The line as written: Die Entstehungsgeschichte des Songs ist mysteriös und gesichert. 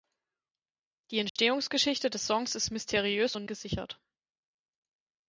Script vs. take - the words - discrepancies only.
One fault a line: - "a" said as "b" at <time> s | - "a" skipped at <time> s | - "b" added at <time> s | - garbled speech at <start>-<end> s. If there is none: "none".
none